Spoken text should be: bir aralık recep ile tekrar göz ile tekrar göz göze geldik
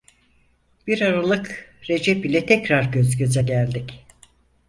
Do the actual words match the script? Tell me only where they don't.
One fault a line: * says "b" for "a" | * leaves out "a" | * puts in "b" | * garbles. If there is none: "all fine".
* leaves out "ile tekrar göz"